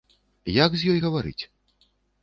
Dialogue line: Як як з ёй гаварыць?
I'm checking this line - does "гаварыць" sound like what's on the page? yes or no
yes